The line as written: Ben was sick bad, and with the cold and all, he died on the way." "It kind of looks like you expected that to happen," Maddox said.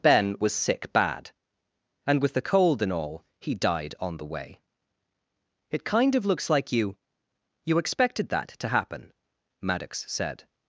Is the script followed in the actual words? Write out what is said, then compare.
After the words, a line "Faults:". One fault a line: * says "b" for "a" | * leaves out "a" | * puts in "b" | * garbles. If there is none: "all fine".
Ben was sick bad, and with the cold and all, he died on the way." "It kind of looks like you you expected that to happen," Maddox said.
Faults:
* puts in "you"